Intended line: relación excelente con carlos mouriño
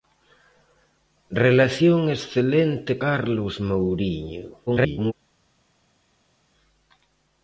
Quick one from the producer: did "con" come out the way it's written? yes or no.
no